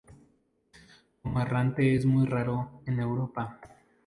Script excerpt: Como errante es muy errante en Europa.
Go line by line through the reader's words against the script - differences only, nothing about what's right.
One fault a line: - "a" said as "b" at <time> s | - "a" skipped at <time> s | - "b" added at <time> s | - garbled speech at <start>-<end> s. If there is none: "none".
- "errante" said as "raro" at 2.3 s